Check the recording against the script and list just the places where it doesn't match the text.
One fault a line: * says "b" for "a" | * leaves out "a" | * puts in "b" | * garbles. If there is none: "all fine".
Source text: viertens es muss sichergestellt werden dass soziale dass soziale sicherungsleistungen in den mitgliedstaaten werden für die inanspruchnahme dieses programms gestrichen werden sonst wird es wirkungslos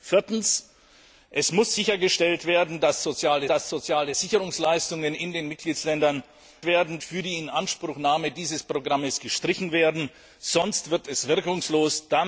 all fine